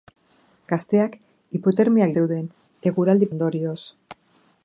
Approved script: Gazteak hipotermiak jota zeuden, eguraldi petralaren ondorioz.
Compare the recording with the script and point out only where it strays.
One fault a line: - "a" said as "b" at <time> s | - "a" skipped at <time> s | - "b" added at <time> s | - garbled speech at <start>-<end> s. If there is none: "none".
- "jota" skipped at 2.1 s
- "petralaren" skipped at 3.3 s